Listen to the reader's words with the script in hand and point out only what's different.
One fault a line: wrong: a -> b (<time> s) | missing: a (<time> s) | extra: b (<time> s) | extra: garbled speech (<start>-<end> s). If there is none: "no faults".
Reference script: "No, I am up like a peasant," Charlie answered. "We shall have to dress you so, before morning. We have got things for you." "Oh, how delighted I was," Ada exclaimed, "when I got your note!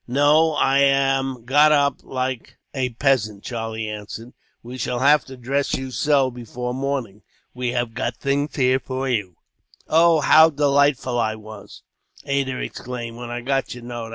extra: got (1.4 s)
extra: here (8.6 s)